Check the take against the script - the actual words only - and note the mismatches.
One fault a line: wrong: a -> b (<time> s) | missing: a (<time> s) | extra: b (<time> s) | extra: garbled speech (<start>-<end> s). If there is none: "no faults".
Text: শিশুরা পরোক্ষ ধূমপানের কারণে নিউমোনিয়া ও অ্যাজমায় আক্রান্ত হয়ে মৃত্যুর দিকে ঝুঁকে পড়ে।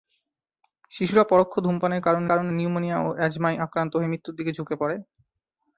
extra: কারণে (2.2 s)